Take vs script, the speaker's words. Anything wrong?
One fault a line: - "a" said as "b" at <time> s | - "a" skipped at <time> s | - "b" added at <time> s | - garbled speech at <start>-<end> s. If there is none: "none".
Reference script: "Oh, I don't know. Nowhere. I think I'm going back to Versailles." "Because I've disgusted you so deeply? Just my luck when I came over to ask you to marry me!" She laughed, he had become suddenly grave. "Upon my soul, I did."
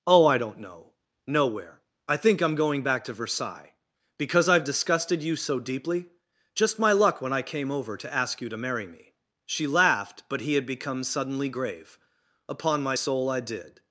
- "but" added at 10.3 s